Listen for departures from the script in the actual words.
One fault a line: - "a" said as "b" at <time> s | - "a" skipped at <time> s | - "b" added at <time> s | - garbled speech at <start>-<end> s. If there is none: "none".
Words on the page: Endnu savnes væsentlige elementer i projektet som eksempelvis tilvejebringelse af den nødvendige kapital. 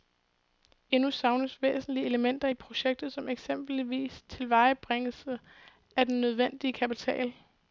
none